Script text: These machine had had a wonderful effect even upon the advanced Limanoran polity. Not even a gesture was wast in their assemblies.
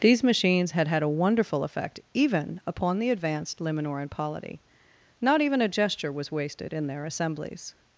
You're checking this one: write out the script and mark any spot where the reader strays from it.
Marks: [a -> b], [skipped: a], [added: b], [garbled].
These [machine -> machines] had had a wonderful effect even upon the advanced Limanoran polity. Not even a gesture was [wast -> wasted] in their assemblies.